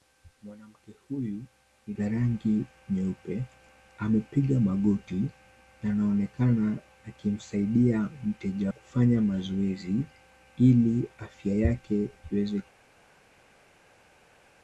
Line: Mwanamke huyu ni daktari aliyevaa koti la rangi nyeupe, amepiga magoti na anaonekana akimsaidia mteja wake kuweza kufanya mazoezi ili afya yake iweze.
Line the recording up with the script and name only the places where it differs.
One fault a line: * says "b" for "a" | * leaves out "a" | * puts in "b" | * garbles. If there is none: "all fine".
* leaves out "daktari aliyevaa koti"
* leaves out "wake kuweza"